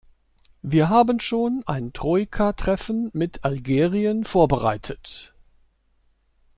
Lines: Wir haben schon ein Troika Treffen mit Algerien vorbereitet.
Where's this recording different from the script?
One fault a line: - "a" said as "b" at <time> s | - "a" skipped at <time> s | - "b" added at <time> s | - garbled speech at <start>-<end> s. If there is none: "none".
none